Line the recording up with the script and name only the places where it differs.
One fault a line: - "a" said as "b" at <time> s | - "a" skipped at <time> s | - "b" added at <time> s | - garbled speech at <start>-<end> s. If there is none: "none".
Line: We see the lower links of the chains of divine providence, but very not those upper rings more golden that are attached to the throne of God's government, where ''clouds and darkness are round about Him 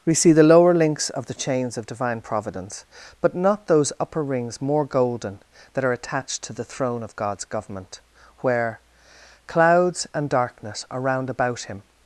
- "very" skipped at 3.4 s